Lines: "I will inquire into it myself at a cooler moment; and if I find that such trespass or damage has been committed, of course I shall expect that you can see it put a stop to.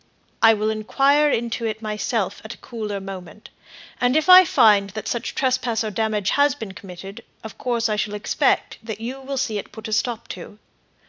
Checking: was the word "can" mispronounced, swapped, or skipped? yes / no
yes